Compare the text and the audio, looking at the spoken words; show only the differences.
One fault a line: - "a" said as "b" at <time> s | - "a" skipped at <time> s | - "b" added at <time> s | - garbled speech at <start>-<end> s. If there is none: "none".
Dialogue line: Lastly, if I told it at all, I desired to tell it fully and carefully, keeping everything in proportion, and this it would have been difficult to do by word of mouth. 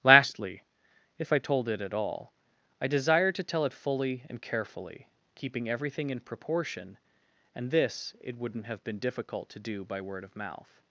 - "would" said as "wouldn't" at 8.4 s